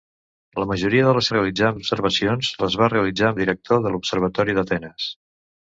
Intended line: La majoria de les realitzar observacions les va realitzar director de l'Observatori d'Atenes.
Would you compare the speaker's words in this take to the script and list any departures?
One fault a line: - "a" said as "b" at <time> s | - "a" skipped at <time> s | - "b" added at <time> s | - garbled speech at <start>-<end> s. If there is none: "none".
none